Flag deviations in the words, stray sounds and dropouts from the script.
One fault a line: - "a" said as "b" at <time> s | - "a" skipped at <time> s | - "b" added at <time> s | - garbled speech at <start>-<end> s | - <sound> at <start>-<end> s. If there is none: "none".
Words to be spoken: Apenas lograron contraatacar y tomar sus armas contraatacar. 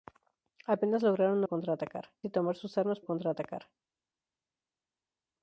none